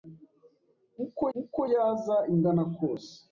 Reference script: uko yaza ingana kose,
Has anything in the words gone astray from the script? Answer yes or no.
yes